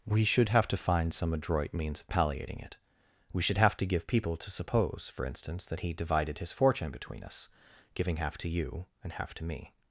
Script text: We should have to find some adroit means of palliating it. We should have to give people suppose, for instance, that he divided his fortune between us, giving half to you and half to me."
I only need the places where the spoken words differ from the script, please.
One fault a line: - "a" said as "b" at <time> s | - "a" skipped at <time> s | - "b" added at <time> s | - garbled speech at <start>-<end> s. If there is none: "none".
- "to" added at 4.4 s